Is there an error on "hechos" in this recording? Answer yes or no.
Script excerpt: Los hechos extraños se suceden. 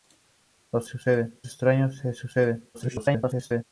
yes